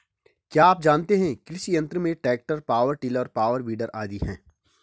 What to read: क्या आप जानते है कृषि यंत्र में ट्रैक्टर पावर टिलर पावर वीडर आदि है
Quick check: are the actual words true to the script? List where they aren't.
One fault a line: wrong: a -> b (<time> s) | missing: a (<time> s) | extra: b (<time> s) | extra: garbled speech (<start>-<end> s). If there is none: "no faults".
no faults